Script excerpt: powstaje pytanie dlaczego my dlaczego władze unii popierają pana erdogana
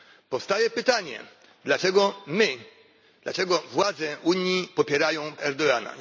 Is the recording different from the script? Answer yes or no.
yes